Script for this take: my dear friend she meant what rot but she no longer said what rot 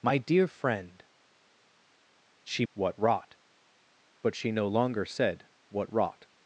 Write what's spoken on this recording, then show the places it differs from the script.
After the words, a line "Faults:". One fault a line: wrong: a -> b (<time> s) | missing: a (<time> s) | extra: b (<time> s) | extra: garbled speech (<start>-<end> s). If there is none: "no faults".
my dear friend she what rot but she no longer said what rot
Faults:
missing: meant (2.6 s)